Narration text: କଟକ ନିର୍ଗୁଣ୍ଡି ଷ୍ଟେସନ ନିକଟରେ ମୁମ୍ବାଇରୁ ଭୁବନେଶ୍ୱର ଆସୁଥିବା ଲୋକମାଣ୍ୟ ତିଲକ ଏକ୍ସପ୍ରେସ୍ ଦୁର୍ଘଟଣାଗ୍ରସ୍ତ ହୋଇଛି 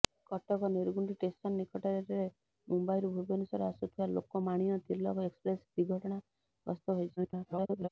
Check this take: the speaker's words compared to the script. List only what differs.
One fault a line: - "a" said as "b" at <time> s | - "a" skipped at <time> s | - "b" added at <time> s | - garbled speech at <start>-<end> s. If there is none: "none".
- garbled speech at 7.2-7.9 s